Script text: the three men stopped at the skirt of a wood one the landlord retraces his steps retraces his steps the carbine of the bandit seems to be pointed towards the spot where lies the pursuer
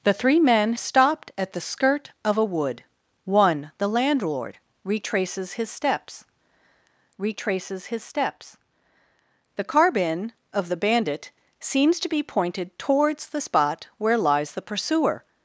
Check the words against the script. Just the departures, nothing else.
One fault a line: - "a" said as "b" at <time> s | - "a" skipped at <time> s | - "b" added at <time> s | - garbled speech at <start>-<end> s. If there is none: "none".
none